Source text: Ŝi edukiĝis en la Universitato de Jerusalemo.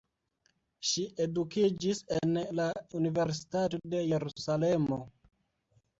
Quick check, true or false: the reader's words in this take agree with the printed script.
true